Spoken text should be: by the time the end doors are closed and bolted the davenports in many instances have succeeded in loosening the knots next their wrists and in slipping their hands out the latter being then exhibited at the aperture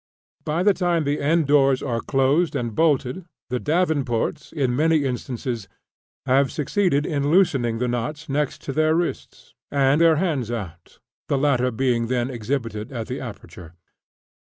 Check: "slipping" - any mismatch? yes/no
yes